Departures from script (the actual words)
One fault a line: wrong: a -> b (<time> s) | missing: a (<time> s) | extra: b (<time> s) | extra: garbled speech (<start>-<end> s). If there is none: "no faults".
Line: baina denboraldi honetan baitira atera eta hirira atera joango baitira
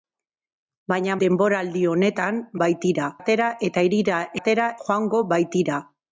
no faults